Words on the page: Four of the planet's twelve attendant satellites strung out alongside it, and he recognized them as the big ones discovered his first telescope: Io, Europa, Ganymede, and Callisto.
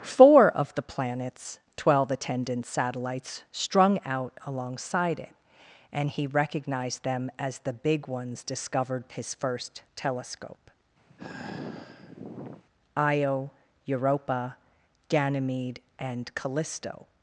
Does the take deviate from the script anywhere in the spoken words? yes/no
no